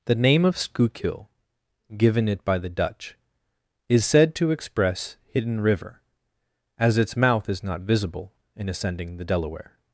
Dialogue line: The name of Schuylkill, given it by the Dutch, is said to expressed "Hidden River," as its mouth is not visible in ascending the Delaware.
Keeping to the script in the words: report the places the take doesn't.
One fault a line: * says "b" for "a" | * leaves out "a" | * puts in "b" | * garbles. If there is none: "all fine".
* says "express" for "expressed"